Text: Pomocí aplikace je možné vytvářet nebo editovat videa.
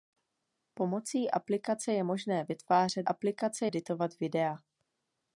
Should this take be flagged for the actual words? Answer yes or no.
yes